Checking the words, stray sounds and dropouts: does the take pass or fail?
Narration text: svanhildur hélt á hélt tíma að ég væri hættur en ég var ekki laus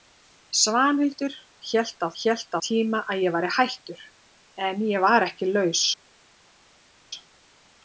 pass